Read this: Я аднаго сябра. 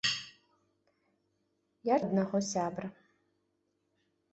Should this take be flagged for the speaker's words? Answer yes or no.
no